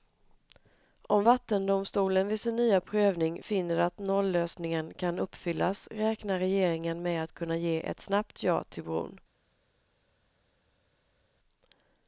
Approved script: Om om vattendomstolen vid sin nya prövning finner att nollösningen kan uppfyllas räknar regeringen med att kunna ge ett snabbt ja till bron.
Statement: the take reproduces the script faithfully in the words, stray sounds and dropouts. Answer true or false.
false